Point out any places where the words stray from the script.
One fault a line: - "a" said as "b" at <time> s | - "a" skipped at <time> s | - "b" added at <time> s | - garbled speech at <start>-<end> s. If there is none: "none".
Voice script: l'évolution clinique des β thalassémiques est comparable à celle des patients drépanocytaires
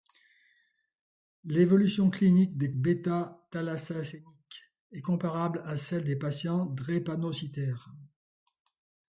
none